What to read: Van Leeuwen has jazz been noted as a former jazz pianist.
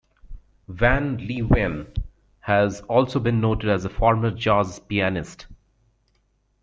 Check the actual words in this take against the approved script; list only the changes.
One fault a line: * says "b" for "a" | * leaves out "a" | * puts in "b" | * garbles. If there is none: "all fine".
* says "also" for "jazz"